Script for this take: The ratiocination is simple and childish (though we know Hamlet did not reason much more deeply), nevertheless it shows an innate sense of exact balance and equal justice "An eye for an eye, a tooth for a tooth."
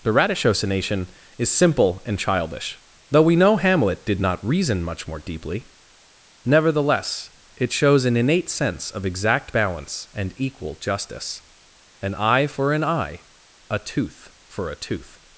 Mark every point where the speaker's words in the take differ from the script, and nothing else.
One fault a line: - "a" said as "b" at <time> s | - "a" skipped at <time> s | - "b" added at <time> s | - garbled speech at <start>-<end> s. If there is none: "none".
none